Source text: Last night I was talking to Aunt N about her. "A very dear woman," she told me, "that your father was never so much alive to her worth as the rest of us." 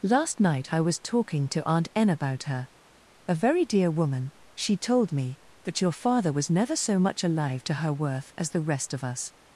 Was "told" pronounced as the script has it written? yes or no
yes